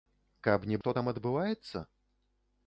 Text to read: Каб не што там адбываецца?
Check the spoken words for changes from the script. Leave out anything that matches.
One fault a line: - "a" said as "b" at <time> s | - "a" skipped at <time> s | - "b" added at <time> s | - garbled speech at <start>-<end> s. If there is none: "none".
none